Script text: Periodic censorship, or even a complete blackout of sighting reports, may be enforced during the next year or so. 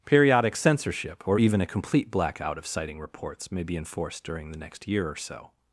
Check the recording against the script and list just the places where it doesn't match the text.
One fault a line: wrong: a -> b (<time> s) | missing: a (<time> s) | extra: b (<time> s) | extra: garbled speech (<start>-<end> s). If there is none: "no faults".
no faults